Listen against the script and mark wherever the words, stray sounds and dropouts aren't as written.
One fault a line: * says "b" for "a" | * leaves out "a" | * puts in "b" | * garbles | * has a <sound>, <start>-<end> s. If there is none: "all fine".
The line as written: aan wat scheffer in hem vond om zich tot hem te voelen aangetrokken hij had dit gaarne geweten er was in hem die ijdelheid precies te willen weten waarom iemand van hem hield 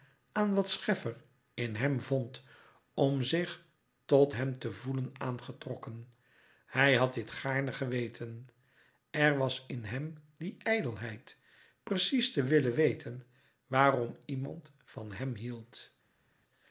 all fine